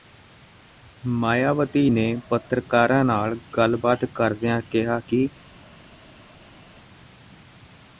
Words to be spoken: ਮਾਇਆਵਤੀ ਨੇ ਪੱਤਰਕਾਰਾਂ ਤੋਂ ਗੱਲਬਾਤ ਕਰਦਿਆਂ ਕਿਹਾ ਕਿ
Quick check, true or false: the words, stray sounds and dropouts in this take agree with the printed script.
false